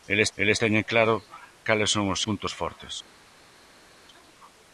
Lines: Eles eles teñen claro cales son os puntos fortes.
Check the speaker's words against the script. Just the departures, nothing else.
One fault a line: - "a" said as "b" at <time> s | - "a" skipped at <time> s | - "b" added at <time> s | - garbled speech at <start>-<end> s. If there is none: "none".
none